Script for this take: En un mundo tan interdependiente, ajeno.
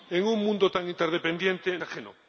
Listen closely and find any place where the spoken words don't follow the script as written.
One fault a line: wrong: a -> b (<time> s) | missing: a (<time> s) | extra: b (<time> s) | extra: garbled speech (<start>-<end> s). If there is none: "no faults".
no faults